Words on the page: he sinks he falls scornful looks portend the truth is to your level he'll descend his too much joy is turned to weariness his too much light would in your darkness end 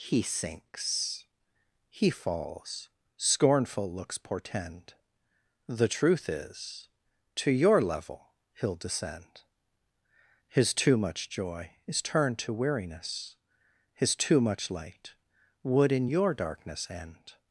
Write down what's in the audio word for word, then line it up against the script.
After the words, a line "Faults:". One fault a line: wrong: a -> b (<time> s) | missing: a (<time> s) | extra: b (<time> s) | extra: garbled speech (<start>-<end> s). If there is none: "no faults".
he sinks he falls scornful looks portend the truth is to your level he'll descend his too much joy is turned to weariness his too much light would in your darkness end
Faults:
no faults